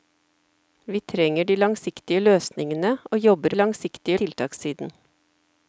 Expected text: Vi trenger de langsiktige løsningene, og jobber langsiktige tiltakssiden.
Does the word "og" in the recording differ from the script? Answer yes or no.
no